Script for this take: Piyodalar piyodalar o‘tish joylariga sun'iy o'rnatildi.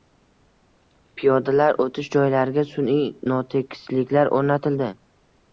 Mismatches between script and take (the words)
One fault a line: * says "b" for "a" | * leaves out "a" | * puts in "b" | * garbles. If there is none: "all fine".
* leaves out "piyodalar"
* puts in "notekisliklar"